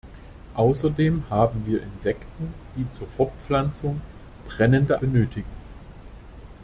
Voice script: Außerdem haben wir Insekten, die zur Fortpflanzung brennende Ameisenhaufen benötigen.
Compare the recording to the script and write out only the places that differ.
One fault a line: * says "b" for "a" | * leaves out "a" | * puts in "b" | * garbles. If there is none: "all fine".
* leaves out "Ameisenhaufen"